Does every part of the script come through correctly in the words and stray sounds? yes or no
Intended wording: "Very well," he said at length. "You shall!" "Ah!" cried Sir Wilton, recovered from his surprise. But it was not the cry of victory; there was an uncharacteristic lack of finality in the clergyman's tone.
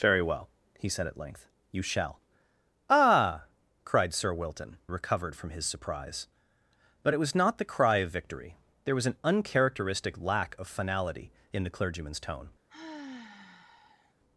no